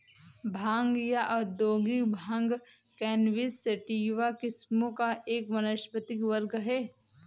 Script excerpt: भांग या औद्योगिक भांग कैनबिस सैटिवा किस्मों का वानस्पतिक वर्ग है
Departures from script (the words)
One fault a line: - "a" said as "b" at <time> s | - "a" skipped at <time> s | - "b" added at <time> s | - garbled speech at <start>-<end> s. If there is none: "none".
- "एक" added at 5.3 s